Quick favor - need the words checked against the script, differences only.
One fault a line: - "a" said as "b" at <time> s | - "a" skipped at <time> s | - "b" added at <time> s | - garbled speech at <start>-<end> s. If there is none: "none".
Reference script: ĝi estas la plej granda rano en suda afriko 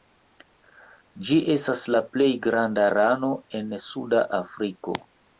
none